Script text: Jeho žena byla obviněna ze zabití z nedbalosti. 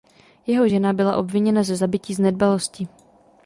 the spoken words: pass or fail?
pass